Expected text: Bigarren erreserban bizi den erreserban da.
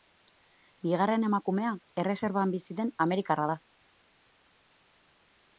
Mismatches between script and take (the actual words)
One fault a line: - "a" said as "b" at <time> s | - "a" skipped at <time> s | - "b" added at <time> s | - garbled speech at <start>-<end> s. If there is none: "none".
- "emakumea" added at 1.3 s
- "erreserban" said as "amerikarra" at 3.1 s